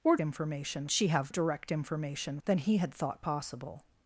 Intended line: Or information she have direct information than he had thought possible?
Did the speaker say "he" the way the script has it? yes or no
yes